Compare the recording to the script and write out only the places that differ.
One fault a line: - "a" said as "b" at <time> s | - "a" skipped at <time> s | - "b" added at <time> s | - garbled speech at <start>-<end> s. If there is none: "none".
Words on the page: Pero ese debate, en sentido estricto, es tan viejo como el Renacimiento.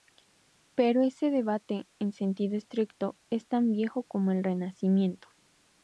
none